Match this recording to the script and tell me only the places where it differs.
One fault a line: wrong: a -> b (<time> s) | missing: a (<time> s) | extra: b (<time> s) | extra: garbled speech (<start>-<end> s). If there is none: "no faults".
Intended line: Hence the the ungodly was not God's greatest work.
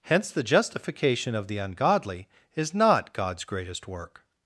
extra: justification of (0.4 s)
wrong: was -> is (2.5 s)